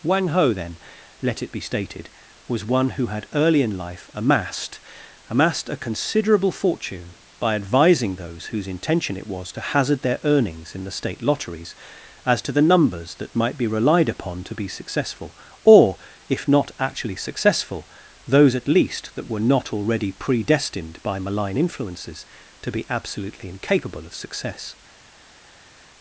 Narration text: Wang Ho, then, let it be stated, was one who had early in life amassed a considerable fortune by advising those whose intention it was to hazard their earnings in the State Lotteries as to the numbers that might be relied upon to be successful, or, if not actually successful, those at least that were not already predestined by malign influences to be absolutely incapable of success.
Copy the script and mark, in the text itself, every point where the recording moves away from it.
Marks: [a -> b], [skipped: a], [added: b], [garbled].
Wang Ho, then, let it be stated, was one who had early in life amassed [added: amassed] a considerable fortune by advising those whose intention it was to hazard their earnings in the State Lotteries as to the numbers that might be relied upon to be successful, or, if not actually successful, those at least that were not already predestined by malign influences to be absolutely incapable of success.